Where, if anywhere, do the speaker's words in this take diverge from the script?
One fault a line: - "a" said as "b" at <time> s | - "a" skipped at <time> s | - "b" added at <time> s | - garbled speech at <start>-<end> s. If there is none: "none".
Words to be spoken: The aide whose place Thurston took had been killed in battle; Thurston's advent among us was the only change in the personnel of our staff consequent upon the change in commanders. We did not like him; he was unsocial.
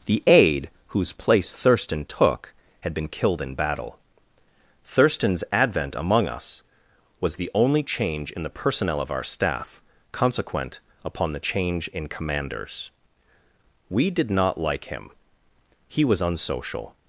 none